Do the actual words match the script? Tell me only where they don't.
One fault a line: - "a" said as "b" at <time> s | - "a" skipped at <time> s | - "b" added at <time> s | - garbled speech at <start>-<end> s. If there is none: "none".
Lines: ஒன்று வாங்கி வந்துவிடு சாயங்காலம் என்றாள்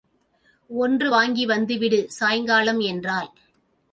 none